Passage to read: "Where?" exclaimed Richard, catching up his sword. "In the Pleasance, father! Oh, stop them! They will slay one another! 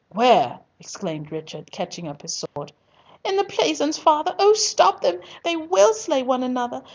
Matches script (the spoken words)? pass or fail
pass